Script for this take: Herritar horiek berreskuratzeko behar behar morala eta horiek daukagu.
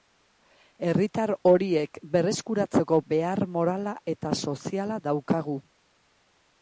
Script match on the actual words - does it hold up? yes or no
no